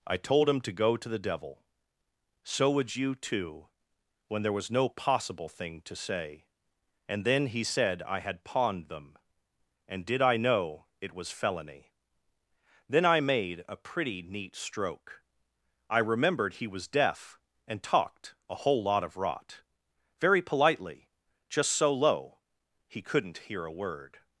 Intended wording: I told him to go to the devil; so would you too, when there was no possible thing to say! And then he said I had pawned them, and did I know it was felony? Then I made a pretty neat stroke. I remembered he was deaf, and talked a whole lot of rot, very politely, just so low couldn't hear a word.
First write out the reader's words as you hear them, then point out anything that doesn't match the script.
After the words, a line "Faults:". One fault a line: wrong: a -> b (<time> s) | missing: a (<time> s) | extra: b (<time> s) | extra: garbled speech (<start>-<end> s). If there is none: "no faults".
I told him to go to the devil; so would you too, when there was no possible thing to say! And then he said I had pawned them, and did I know it was felony? Then I made a pretty neat stroke. I remembered he was deaf, and talked a whole lot of rot, very politely, just so low he couldn't hear a word.
Faults:
extra: he (22.9 s)